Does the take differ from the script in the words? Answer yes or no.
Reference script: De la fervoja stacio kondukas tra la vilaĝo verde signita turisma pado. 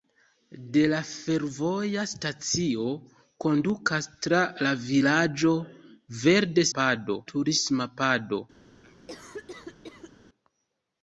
yes